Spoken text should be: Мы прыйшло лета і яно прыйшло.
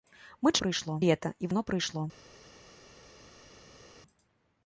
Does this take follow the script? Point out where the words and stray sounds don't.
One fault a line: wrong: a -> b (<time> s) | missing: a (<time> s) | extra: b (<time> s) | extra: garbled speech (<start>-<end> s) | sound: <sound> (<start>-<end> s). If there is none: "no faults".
no faults